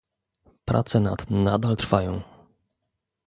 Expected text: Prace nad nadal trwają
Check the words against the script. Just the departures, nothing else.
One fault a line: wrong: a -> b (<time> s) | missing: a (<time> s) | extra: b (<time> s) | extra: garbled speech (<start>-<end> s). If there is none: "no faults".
no faults